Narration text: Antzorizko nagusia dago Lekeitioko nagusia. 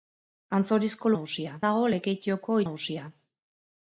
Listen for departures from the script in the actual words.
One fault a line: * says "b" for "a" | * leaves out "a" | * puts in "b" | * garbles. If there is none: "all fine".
all fine